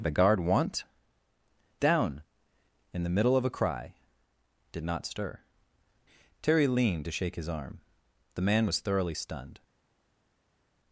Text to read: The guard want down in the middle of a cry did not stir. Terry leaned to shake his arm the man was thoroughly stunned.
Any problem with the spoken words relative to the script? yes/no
no